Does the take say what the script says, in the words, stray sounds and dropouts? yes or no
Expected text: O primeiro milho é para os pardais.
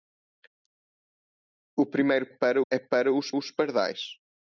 no